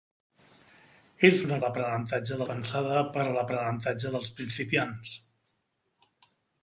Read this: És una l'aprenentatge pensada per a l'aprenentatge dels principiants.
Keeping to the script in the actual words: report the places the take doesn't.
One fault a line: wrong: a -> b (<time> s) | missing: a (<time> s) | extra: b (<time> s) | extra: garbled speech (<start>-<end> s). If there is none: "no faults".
no faults